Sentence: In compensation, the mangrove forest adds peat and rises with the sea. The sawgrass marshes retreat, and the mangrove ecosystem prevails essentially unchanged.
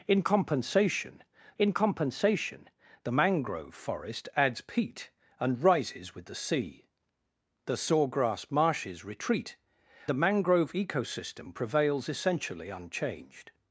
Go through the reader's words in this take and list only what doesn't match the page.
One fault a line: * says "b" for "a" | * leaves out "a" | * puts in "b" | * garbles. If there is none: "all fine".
* puts in "in compensation"
* leaves out "and"